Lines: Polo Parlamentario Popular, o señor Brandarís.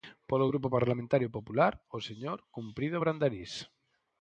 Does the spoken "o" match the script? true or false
true